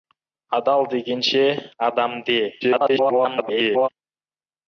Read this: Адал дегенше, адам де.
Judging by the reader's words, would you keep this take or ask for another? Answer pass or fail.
fail